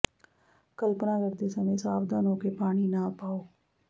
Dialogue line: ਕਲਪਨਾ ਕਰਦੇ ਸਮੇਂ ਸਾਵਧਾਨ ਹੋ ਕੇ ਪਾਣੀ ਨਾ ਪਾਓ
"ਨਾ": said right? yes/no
yes